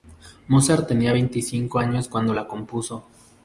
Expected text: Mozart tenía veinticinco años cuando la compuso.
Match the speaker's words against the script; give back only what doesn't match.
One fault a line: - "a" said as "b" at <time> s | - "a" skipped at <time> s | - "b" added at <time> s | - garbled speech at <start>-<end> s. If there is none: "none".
none